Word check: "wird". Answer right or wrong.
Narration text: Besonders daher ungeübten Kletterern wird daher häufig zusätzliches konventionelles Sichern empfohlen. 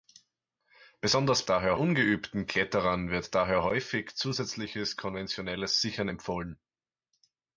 right